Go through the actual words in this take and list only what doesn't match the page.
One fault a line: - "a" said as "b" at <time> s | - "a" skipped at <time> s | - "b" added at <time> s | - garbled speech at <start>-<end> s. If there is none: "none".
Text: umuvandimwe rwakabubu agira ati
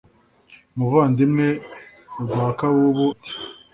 - "agira" skipped at 3.1 s